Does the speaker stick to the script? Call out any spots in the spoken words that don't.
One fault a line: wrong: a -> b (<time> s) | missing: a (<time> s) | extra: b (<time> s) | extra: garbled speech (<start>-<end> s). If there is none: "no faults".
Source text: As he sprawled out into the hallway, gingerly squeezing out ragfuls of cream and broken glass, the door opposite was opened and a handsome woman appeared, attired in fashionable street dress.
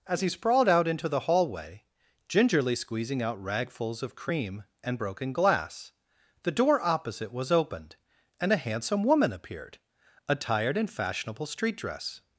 no faults